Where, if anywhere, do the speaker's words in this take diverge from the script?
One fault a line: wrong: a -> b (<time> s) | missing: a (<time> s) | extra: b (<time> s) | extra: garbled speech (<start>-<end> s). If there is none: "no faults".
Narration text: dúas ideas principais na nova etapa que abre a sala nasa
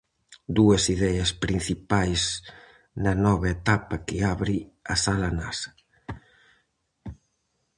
no faults